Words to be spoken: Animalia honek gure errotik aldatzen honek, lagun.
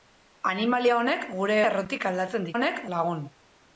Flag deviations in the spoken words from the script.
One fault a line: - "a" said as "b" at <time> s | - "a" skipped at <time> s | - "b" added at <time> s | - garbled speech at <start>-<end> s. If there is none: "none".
none